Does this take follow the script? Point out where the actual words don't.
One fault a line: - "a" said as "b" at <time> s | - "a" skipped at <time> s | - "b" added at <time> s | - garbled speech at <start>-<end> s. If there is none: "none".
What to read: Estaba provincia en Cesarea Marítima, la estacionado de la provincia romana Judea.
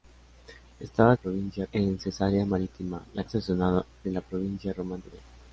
none